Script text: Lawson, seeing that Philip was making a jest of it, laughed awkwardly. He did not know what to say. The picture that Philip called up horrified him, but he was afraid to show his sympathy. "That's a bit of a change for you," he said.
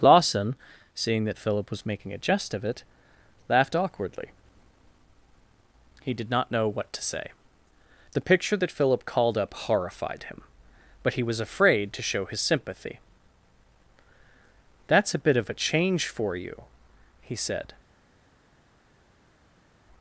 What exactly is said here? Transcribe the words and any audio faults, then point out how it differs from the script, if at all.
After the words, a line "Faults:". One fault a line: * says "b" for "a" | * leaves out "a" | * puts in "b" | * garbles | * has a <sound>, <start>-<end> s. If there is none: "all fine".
Lawson, seeing that Philip was making a jest of it, laughed awkwardly. He did not know what to say. The picture that Philip called up horrified him, but he was afraid to show his sympathy. "That's a bit of a change for you," he said.
Faults:
all fine